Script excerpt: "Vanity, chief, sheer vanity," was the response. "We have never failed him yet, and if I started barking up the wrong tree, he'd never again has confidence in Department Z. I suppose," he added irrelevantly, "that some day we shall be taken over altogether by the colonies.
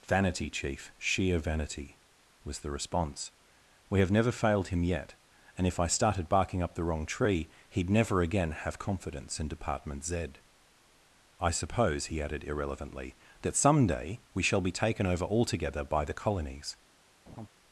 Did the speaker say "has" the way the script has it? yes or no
no